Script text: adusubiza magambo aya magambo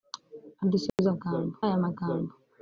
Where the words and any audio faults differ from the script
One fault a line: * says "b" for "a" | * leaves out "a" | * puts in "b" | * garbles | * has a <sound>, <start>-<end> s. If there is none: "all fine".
* has a dropout, 0.9-1.0 s